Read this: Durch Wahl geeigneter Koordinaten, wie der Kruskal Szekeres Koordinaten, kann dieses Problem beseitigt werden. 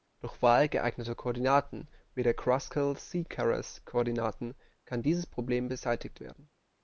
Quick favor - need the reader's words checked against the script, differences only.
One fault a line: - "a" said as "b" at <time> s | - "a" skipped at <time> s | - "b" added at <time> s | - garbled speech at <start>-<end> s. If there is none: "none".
none